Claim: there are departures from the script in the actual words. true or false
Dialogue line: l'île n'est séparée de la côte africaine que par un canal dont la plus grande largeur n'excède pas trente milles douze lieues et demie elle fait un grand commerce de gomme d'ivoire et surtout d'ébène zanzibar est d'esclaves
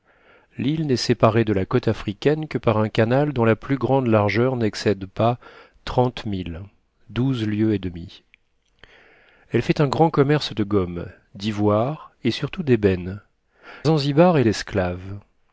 false